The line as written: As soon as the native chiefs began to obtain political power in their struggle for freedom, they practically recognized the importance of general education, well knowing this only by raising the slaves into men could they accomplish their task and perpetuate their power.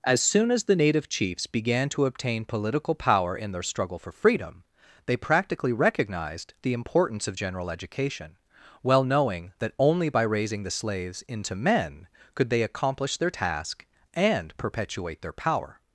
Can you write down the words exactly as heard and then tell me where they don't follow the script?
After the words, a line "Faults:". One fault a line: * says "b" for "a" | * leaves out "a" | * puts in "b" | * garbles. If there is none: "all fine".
As soon as the native chiefs began to obtain political power in their struggle for freedom, they practically recognized the importance of general education, well knowing that only by raising the slaves into men could they accomplish their task and perpetuate their power.
Faults:
* says "that" for "this"